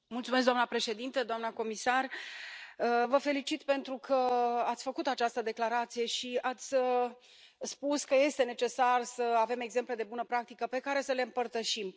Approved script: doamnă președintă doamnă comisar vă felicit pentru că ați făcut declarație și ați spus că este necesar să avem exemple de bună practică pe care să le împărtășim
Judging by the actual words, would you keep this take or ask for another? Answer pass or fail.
fail